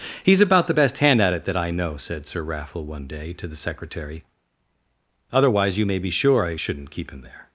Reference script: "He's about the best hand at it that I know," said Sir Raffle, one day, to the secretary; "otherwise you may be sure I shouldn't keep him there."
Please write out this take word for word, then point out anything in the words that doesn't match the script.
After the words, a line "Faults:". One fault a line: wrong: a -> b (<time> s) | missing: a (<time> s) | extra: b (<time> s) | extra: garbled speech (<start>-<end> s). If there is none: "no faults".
"He's about the best hand at it that I know," said Sir Raffle, one day, to the secretary; "otherwise you may be sure I shouldn't keep him there."
Faults:
no faults